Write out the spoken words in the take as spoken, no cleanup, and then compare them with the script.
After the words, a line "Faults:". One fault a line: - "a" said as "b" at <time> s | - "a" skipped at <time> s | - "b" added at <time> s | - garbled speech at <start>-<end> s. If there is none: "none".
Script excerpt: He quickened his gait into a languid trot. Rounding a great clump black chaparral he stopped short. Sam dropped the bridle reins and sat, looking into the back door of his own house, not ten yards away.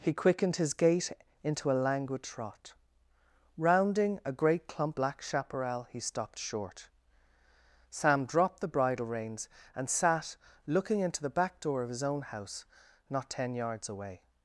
He quickened his gait into a languid trot. Rounding a great clump black chaparral he stopped short. Sam dropped the bridle reins and sat, looking into the back door of his own house, not ten yards away.
Faults:
none